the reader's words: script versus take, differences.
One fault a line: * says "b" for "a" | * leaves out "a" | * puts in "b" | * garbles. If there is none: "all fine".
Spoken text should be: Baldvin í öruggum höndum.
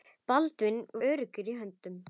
all fine